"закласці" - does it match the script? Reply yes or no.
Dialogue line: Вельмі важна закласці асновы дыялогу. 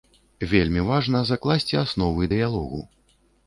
yes